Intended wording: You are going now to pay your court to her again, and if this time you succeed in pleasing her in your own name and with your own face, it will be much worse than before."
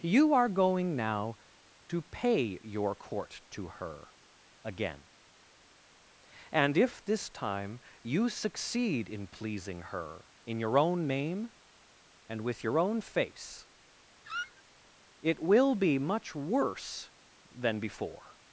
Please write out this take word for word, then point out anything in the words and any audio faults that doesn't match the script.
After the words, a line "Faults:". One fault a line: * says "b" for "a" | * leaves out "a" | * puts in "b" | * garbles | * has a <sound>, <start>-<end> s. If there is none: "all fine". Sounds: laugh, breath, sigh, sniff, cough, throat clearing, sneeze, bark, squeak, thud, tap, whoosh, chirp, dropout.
You are going now to pay your court to her again, and if this time you succeed in pleasing her in your own name and with your own face, it will be much worse than before."
Faults:
* has a squeak, 14.2-14.6 s